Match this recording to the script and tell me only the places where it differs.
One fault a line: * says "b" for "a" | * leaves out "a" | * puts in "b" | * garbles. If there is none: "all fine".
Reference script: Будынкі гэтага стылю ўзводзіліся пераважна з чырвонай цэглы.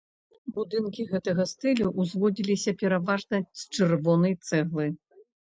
all fine